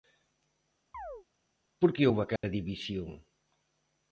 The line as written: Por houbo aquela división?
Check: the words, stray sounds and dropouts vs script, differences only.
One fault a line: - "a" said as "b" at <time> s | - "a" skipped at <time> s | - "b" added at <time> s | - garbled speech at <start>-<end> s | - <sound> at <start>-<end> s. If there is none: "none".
- chirp at 0.9-1.3 s
- "que" added at 1.9 s
- dropout at 2.4-2.4 s